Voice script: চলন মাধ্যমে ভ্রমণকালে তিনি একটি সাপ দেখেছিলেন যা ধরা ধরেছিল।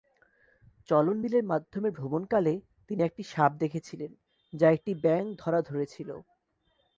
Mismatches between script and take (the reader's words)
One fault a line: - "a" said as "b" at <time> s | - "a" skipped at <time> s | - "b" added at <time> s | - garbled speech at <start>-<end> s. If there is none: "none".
- "বিলের" added at 1.2 s
- "একটি ব্যাঙ" added at 4.7 s